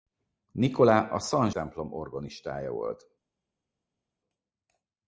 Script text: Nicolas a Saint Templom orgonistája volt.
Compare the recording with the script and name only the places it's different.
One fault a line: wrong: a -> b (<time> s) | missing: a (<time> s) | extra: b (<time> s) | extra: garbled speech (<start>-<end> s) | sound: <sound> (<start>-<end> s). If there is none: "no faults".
no faults